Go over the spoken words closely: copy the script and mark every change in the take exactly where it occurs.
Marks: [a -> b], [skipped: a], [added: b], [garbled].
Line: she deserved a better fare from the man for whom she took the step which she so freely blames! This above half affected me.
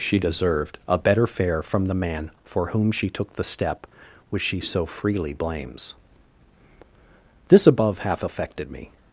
she deserved a better fare from the man for whom she took the step which she so freely blames! This above half affected me.